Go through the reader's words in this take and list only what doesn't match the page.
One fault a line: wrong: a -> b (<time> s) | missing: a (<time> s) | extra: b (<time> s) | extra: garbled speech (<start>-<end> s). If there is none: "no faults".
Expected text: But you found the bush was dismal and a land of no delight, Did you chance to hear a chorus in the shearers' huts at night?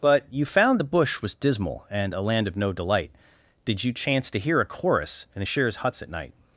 no faults